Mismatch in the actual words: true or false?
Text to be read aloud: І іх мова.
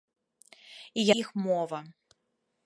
false